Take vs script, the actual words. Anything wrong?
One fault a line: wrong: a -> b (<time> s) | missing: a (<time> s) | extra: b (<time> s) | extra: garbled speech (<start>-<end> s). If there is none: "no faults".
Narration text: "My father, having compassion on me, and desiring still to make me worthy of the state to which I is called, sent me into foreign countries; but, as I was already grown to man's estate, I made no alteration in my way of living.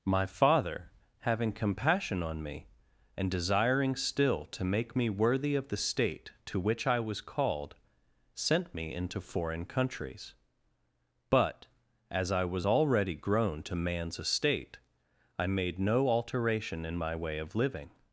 wrong: is -> was (7.0 s)